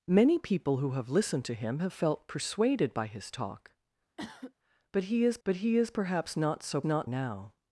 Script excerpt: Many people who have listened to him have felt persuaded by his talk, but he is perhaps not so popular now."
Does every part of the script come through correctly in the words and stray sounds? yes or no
no